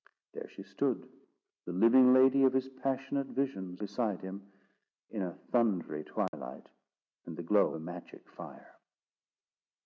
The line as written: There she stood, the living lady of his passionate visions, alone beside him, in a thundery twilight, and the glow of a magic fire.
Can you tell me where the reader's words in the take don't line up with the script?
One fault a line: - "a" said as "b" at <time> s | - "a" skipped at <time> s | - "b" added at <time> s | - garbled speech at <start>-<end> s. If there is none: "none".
- "alone" skipped at 3.8 s
- "of" skipped at 7.8 s